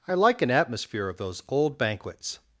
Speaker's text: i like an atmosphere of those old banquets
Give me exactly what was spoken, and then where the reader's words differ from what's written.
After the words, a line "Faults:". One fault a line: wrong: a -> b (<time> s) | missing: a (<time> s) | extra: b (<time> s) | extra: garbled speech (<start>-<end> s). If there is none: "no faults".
i like an atmosphere of those old banquets
Faults:
no faults